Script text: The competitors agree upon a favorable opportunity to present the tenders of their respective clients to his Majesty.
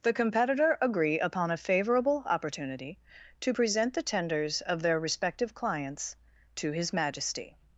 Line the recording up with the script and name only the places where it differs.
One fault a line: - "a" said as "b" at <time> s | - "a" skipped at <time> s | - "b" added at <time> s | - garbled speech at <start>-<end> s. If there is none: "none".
- "competitors" said as "competitor" at 0.1 s